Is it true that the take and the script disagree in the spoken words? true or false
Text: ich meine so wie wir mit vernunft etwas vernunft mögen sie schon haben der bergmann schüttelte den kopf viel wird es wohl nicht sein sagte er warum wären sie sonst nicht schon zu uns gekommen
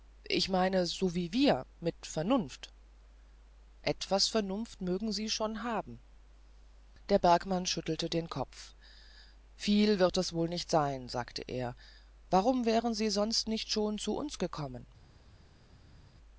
false